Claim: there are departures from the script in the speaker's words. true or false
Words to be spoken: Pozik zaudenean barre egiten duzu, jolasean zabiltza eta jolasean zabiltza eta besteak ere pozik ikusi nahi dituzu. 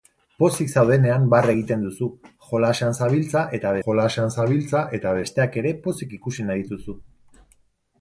false